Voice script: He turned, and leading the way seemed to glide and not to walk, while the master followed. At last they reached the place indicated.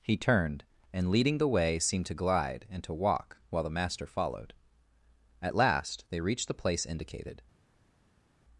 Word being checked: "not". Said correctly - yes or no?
no